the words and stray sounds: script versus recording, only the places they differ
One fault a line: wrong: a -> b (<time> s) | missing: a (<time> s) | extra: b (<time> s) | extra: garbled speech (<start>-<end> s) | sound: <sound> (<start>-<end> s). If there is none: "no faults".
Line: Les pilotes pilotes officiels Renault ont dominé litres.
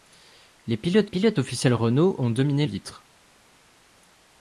no faults